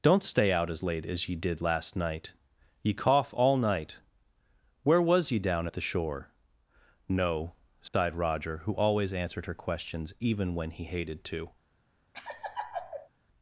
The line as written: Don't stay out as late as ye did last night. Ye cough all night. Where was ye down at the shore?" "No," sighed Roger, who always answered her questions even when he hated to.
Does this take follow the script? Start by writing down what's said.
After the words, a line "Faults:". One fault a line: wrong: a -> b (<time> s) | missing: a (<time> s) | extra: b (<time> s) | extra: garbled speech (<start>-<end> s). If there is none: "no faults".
Don't stay out as late as ye did last night. Ye cough all night. Where was ye down at the shore?" "No," sighed Roger, who always answered her questions even when he hated to.
Faults:
no faults